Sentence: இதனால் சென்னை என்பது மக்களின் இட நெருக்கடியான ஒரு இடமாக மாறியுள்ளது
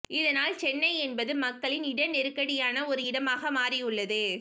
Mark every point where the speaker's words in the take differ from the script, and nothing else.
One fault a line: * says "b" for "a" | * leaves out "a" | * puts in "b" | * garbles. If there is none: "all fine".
all fine